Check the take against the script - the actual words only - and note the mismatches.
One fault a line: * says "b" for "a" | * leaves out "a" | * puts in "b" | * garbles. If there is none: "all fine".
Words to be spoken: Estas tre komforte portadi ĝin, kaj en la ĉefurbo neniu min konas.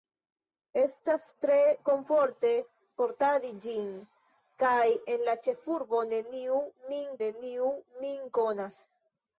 * puts in "neniu min"